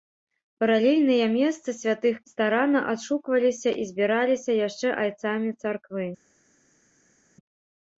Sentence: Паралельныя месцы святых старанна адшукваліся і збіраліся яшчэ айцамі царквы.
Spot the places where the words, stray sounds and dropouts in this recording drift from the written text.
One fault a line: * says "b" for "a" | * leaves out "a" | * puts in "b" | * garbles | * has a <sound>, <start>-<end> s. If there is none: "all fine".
all fine